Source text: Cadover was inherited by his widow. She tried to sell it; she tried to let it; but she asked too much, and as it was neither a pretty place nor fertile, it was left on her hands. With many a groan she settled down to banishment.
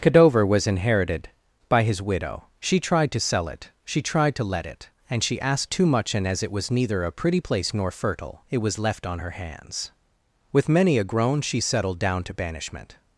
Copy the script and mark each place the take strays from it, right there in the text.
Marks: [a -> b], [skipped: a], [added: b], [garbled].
Cadover was inherited by his widow. She tried to sell it; she tried to let it; [but -> and] she asked too much, and as it was neither a pretty place nor fertile, it was left on her hands. With many a groan she settled down to banishment.